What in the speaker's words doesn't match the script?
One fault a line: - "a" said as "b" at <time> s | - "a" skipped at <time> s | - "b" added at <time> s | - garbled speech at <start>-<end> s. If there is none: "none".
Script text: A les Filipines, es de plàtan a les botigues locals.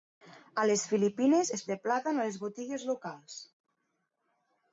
none